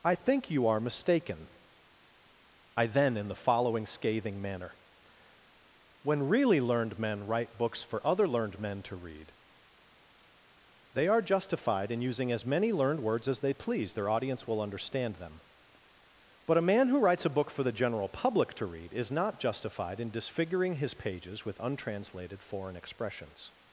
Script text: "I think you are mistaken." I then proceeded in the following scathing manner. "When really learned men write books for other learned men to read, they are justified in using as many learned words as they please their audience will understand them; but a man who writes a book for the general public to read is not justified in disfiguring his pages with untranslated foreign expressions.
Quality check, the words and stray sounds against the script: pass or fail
fail